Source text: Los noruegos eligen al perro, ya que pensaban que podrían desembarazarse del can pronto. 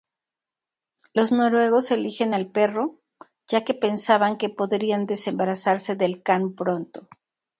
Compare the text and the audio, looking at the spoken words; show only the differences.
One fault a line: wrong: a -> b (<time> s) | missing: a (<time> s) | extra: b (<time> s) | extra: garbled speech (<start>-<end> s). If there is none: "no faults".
no faults